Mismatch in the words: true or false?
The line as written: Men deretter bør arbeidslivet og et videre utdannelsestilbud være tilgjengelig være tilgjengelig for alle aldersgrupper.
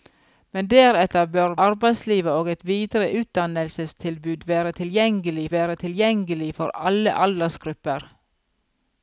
false